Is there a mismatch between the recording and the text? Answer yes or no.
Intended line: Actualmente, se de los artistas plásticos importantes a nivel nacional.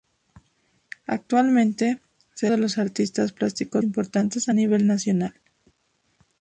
no